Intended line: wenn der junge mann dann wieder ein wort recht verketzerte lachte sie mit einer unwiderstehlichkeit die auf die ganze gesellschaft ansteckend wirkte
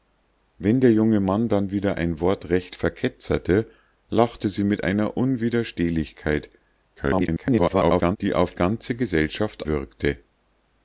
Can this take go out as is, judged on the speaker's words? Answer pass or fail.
fail